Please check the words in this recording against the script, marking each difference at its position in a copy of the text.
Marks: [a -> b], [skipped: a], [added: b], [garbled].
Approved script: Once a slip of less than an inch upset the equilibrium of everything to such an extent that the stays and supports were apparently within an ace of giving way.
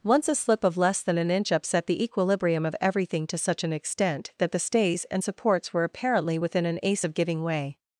Once a slip of less than an inch upset the equilibrium of everything to such an extent that the stays and supports were apparently within an ace of giving way.